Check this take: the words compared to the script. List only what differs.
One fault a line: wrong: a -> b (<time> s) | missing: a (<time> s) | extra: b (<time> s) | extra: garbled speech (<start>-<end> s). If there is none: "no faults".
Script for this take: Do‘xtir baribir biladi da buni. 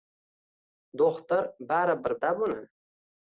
missing: biladi (2.2 s)